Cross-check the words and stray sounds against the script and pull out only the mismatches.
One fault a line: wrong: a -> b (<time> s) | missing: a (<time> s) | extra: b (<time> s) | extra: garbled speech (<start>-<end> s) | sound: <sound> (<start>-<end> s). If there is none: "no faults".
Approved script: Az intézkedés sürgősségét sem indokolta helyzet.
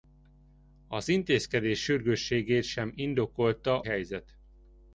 no faults